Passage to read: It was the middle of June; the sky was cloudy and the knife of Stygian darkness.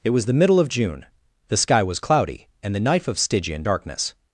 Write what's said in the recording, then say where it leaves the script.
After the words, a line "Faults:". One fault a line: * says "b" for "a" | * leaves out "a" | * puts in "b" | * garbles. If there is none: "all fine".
It was the middle of June; the sky was cloudy and the knife of Stygian darkness.
Faults:
all fine